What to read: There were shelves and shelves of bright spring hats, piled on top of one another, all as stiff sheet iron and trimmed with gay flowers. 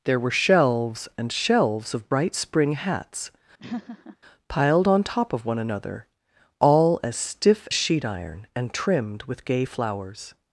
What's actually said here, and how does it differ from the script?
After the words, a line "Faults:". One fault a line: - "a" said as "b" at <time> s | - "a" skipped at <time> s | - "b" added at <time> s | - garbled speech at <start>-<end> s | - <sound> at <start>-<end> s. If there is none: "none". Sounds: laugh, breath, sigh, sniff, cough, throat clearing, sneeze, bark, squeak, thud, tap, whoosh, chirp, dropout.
There were shelves and shelves of bright spring hats, piled on top of one another, all as stiff sheet iron and trimmed with gay flowers.
Faults:
- laugh at 3.6-4.2 s